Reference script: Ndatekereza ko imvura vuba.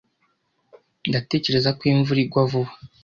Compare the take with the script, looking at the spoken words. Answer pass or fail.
fail